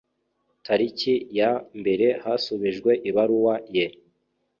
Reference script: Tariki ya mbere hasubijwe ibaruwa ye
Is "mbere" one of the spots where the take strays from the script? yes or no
no